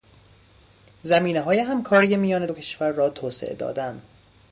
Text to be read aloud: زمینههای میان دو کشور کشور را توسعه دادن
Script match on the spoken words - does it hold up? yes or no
no